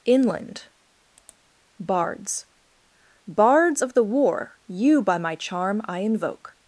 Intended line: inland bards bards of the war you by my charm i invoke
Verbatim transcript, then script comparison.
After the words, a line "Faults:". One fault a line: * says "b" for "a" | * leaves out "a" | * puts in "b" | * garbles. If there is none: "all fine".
inland bards bards of the war you by my charm i invoke
Faults:
all fine